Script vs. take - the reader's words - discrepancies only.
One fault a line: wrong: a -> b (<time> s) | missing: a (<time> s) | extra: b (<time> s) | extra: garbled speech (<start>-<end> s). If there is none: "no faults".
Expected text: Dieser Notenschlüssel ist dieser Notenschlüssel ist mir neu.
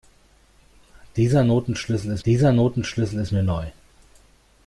no faults